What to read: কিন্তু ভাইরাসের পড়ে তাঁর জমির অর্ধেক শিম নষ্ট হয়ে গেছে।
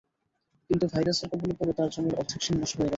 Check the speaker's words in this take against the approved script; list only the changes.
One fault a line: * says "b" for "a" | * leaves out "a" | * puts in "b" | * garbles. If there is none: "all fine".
* puts in "কবলে"